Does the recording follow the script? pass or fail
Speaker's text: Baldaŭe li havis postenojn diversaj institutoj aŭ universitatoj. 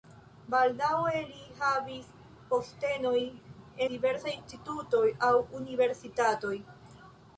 pass